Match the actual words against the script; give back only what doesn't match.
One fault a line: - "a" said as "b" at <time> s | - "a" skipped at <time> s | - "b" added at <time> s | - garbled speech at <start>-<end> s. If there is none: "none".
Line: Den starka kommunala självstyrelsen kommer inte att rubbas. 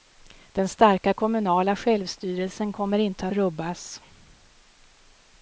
- "att" skipped at 3.3 s